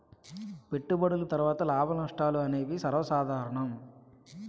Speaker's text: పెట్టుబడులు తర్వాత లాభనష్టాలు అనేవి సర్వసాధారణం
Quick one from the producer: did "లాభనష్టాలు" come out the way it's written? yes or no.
yes